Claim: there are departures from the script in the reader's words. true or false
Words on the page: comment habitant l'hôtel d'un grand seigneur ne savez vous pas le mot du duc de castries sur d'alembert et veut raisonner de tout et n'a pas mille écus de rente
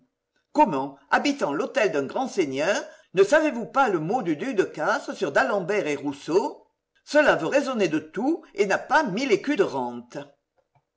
true